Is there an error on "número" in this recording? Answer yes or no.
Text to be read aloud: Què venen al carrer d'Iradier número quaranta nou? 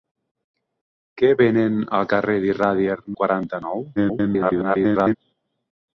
yes